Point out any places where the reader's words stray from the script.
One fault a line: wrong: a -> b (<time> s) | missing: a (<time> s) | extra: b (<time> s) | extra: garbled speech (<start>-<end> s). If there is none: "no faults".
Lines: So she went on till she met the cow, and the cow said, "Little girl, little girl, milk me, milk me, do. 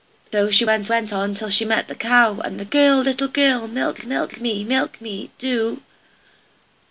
extra: went (0.9 s)
wrong: cow said -> girl (2.6 s)
wrong: little girl -> milk (3.7 s)